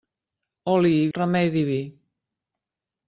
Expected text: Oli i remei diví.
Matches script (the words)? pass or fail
pass